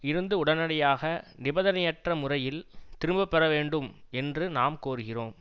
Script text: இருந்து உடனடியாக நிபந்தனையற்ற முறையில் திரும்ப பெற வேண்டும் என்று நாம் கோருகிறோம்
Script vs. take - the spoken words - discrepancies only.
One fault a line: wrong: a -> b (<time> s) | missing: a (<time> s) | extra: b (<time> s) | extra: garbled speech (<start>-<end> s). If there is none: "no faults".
no faults